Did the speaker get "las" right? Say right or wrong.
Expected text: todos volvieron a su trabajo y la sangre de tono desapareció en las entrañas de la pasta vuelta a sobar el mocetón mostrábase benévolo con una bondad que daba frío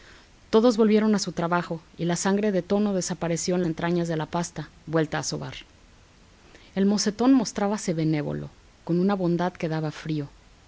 wrong